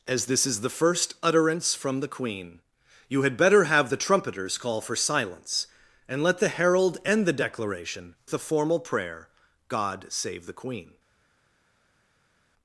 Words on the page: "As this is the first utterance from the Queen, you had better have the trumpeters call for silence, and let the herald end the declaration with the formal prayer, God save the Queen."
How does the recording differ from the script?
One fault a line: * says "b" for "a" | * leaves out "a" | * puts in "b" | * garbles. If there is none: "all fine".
* leaves out "with"